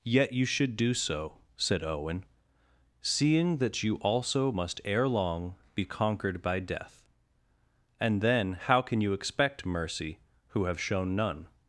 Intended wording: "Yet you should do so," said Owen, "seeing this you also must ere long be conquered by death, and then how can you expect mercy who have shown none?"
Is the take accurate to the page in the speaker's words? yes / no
no